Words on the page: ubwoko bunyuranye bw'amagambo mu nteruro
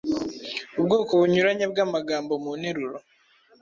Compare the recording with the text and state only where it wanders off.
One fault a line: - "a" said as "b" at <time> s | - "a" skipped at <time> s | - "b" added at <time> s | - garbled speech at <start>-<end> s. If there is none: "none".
none